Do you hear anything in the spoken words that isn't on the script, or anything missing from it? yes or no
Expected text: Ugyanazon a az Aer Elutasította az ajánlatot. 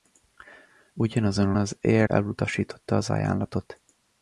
no